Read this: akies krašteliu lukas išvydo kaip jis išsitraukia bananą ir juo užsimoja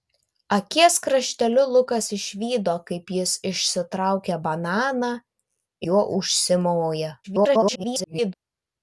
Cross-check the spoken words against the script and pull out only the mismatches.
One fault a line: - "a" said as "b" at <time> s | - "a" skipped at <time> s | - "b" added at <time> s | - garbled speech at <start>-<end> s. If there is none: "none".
- "ir" skipped at 5.2 s
- garbled speech at 7.2-8.3 s